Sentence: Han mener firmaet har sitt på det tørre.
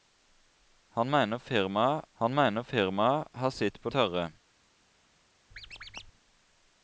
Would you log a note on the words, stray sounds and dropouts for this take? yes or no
yes